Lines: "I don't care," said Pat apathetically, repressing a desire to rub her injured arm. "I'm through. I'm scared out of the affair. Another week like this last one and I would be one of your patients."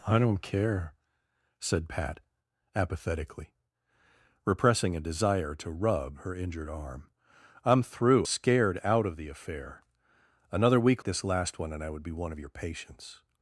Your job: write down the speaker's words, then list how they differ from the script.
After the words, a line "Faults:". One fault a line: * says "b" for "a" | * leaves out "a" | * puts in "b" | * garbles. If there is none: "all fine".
"I don't care," said Pat apathetically, repressing a desire to rub her injured arm. "I'm through. Scared out of the affair. Another week this last one and I would be one of your patients."
Faults:
* leaves out "I'm"
* leaves out "like"